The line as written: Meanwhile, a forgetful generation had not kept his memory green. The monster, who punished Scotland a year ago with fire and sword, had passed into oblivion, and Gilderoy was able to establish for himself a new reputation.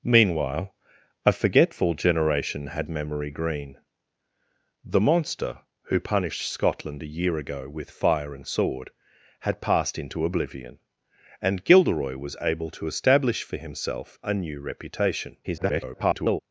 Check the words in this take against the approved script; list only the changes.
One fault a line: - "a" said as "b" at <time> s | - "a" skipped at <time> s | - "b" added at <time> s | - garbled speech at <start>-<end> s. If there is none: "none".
- "not kept his" skipped at 2.9 s
- garbled speech at 15.4-16.4 s